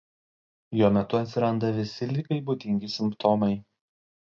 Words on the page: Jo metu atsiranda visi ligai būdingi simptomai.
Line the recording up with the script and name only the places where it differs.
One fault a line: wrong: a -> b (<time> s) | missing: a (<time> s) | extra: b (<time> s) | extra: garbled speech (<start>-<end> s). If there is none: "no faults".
no faults